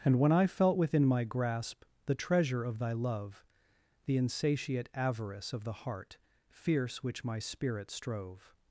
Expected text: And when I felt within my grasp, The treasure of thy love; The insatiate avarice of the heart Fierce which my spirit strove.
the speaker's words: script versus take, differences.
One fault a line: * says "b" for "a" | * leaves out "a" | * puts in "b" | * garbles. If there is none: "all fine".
all fine